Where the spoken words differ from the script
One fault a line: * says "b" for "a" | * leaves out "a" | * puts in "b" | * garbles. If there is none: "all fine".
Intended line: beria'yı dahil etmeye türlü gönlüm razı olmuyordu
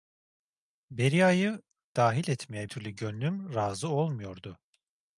all fine